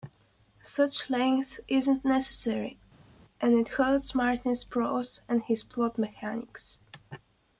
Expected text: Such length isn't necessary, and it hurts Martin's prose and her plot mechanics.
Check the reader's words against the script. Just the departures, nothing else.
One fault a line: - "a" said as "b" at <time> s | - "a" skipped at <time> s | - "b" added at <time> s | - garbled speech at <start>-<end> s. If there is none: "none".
- "her" said as "his" at 5.4 s